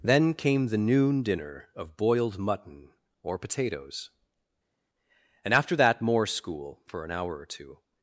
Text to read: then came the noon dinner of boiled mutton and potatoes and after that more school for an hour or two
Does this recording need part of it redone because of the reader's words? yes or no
yes